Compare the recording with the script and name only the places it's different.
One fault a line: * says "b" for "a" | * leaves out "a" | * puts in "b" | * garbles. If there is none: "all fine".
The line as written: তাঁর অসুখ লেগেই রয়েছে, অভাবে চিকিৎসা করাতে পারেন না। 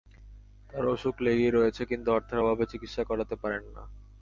* puts in "কিন্তু অর্থের"